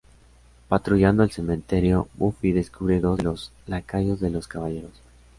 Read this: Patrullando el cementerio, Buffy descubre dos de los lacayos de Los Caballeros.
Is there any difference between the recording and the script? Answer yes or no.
no